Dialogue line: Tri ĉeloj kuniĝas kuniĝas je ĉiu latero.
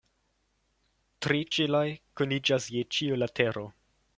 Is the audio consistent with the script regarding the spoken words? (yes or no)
no